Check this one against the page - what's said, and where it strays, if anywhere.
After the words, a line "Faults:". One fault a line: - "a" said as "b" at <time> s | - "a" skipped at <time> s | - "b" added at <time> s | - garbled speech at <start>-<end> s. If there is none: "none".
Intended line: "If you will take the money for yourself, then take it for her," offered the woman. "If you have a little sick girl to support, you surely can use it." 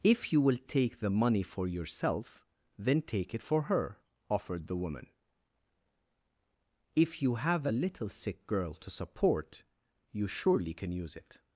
"If you will take the money for yourself, then take it for her," offered the woman. "If you have a little sick girl to support, you surely can use it."
Faults:
none